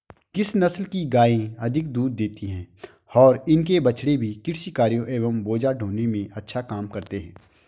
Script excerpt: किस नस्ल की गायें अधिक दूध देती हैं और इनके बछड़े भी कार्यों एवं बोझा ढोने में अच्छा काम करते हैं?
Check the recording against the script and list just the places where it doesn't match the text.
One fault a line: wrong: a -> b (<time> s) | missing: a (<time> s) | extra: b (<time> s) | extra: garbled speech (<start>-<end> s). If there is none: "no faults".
extra: कृषि (4.5 s)